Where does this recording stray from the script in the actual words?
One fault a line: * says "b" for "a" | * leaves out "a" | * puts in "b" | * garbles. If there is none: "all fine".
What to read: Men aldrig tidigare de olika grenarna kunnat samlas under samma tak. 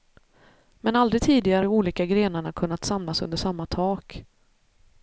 all fine